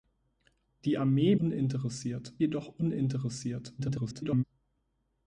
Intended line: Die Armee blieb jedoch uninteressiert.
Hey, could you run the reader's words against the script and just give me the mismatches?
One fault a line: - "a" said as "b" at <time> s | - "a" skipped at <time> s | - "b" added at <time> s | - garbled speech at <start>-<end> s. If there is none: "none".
- "blieb" said as "uninteressiert" at 1.4 s
- garbled speech at 3.8-4.4 s